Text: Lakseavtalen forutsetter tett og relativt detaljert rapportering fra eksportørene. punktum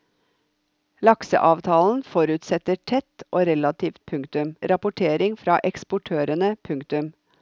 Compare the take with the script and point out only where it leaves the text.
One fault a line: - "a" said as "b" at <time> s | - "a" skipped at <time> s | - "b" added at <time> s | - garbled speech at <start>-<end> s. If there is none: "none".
- "detaljert" said as "punktum" at 4.0 s